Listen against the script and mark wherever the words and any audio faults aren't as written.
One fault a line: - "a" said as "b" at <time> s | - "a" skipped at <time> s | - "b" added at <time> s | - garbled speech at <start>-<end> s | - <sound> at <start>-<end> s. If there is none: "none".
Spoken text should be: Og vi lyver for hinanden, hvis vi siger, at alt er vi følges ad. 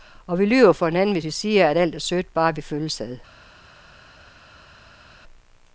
- "sødt bare" added at 2.0 s